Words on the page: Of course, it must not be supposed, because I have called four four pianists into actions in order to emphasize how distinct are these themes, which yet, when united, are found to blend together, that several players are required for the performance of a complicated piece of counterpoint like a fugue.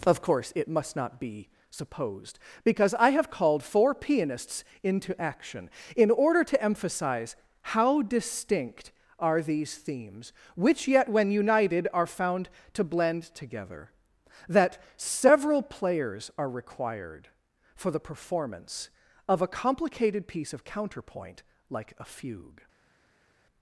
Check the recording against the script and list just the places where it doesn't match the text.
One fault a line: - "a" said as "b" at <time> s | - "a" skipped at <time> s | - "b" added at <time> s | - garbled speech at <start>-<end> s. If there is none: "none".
- "four" skipped at 4.0 s
- "actions" said as "action" at 5.2 s